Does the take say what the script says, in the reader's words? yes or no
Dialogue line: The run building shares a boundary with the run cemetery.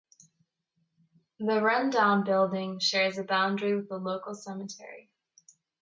no